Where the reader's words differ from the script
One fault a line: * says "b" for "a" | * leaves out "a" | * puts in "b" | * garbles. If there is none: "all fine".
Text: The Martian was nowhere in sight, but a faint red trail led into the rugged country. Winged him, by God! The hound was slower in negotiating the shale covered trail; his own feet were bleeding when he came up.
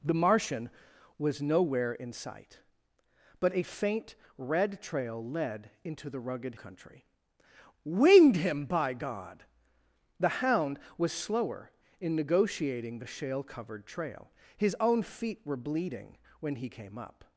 all fine